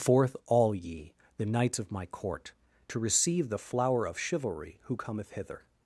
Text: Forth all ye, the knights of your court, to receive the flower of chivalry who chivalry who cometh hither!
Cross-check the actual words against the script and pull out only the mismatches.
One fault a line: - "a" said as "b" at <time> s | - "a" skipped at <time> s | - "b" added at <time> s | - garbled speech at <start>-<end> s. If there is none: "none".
- "your" said as "my" at 1.9 s
- "chivalry who" skipped at 5.0 s